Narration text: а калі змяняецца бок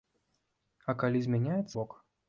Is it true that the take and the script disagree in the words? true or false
false